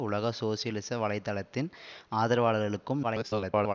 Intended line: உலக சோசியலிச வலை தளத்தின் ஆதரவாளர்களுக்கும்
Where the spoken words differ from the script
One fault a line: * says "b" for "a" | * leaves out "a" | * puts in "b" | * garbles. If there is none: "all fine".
* garbles